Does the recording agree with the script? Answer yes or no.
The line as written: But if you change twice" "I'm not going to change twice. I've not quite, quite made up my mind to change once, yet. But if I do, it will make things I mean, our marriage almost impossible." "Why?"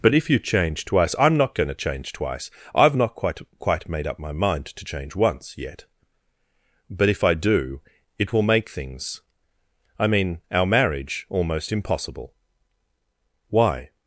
yes